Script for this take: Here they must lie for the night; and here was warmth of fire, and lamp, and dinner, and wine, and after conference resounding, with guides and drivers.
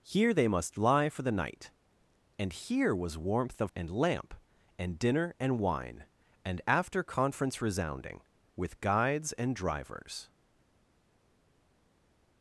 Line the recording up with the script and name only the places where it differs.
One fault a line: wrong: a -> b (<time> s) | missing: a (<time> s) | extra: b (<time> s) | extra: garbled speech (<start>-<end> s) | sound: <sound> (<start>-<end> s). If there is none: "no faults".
missing: fire (3.7 s)